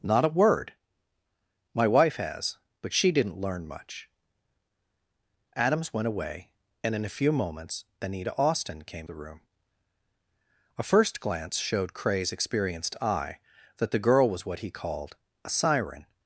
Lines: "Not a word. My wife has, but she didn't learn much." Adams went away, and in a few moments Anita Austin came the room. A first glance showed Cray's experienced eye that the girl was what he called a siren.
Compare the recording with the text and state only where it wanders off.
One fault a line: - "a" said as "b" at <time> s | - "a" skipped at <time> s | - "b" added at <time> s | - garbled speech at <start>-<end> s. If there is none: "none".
none